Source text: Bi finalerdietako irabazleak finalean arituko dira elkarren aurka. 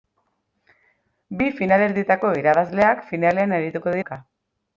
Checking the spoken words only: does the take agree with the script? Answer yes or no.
no